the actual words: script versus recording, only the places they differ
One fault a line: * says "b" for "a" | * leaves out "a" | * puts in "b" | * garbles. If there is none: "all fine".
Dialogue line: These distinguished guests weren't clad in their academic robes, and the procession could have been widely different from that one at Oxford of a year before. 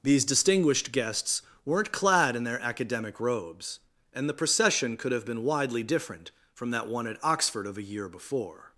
all fine